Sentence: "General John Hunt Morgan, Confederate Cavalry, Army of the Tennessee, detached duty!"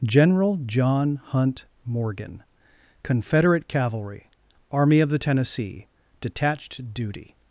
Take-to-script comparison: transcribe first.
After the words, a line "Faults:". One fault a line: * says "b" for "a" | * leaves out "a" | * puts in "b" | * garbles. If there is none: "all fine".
"General John Hunt Morgan, Confederate Cavalry, Army of the Tennessee, detached duty!"
Faults:
all fine